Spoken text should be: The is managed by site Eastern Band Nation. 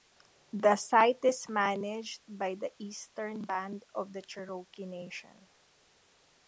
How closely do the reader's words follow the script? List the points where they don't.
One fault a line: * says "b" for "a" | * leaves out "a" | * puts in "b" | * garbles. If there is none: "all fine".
* puts in "site"
* says "the" for "site"
* puts in "of the Cherokee"